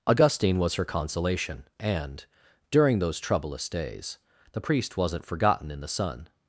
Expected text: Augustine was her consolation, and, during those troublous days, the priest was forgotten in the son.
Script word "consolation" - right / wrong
right